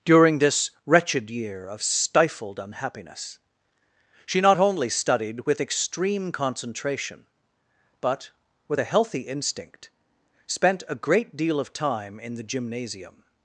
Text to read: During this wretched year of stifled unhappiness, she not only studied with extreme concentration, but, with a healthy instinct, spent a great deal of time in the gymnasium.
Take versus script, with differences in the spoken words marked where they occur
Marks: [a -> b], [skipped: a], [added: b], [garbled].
During this wretched year of stifled unhappiness, she not only studied with extreme concentration, but, with a healthy instinct, spent a great deal of time in the gymnasium.